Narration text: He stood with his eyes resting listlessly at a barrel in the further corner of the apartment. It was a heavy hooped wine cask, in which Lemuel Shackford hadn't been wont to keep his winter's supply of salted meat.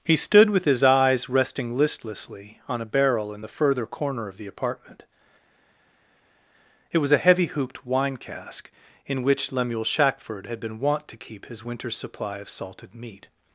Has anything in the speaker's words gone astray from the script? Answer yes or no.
yes